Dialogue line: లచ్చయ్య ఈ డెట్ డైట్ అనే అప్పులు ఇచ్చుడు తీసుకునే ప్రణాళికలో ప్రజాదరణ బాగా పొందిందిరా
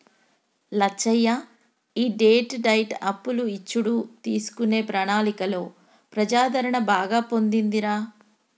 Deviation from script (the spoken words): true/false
true